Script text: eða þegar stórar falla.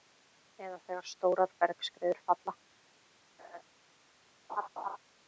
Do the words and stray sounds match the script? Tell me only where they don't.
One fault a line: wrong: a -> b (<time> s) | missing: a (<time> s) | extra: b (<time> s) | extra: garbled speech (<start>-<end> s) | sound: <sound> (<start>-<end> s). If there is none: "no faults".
extra: bergskriður (1.7 s)
sound: laugh (3.4-3.6 s)
sound: laugh (4.5-5.0 s)